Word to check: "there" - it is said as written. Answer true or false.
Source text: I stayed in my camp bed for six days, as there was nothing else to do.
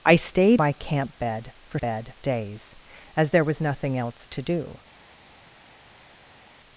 true